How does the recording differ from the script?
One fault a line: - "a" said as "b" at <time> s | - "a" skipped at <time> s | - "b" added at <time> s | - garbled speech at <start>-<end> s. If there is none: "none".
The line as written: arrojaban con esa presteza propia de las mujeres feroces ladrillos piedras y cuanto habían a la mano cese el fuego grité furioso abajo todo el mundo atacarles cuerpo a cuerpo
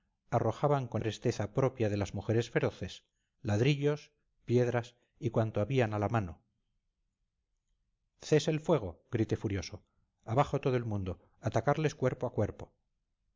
- "esa" skipped at 1.0 s